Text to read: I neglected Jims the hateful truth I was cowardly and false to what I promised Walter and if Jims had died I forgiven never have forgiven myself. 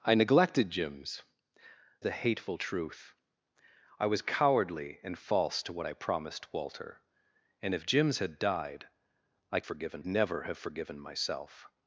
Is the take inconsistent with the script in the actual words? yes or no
no